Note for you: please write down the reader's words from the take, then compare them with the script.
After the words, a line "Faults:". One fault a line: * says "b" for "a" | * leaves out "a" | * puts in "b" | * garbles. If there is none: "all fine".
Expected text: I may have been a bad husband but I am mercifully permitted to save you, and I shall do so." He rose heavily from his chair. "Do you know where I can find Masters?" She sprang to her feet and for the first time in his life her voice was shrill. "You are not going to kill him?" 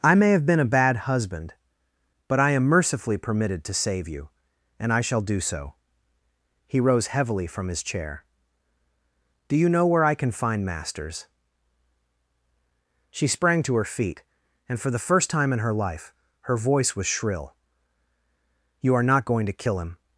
I may have been a bad husband but I am mercifully permitted to save you, and I shall do so." He rose heavily from his chair. "Do you know where I can find Masters?" She sprang to her feet and for the first time in her life her voice was shrill. "You are not going to kill him?"
Faults:
* says "her" for "his"